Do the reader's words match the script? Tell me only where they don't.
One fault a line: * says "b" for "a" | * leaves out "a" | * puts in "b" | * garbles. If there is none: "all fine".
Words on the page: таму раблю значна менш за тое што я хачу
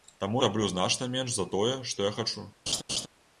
all fine